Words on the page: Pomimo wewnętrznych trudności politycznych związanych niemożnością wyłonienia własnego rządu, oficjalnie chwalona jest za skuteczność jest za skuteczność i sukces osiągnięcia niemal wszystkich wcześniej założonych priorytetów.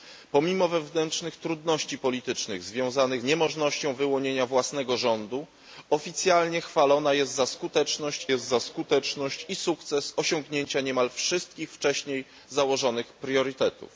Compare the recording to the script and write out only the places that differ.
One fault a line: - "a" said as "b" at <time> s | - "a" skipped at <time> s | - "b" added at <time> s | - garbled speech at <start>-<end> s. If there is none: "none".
none